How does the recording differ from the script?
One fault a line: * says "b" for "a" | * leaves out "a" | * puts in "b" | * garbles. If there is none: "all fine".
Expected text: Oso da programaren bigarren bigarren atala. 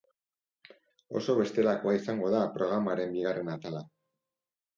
* puts in "bestelakoa izango"
* leaves out "bigarren"